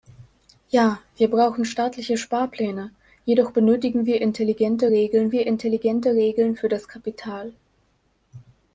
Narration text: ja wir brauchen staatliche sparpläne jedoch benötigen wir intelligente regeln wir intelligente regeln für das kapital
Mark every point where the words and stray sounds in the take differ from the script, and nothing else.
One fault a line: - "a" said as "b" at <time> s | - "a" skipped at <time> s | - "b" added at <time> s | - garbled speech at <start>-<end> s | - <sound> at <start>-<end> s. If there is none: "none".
none